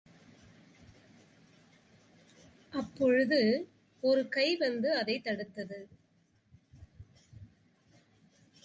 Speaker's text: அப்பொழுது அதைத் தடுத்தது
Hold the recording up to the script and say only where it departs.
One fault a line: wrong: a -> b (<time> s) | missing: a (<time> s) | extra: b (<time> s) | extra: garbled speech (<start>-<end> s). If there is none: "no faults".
extra: ஒரு கை வந்து (4.0 s)